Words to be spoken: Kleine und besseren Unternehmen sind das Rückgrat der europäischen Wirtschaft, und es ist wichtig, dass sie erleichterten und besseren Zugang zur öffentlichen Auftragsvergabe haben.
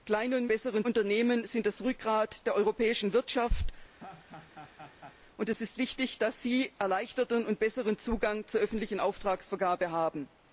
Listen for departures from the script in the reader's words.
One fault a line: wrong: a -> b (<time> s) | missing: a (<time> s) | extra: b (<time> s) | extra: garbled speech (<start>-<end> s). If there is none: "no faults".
no faults